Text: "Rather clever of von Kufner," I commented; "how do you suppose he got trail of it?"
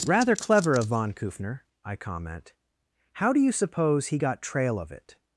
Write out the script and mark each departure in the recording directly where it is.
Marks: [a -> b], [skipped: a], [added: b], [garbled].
"Rather clever of von Kufner," I [commented; -> comment] "how do you suppose he got trail of it?"